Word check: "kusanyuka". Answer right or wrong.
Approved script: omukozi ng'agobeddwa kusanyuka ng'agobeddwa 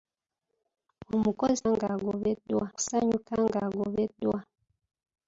right